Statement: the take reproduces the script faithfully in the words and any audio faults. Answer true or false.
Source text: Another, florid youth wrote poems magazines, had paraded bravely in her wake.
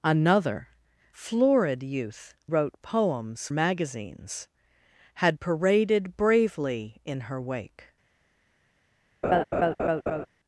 false